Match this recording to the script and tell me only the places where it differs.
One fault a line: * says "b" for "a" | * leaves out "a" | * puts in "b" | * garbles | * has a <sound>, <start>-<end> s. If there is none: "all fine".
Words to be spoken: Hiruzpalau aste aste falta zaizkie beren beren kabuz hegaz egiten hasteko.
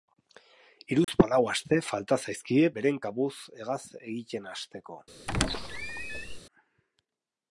* has a dropout, 1.0-1.1 s
* leaves out "aste"
* leaves out "beren"
* has a squeak, 5.3-6.4 s